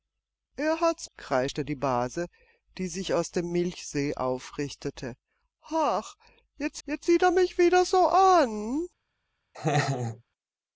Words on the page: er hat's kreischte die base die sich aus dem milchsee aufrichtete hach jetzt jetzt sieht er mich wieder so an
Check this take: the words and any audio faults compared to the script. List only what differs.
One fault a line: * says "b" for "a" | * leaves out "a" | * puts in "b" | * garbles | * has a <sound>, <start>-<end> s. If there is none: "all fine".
* has a laugh, 9.5-10.2 s